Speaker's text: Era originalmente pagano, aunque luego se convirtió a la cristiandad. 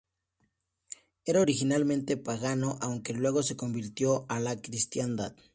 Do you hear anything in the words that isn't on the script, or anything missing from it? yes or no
no